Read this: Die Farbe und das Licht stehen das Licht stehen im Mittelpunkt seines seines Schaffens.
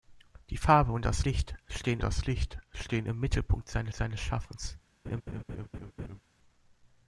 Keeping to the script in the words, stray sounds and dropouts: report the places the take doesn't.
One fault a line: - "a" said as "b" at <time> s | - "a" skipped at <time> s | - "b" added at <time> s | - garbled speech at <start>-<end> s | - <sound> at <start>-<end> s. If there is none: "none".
- laugh at 5.0-6.2 s